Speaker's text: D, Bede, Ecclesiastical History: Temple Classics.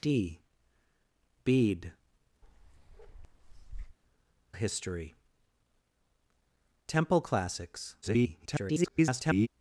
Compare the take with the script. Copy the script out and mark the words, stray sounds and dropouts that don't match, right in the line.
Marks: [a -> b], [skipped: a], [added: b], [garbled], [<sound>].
D, Bede, [skipped: Ecclesiastical] [bark] History: Temple Classics. [garbled]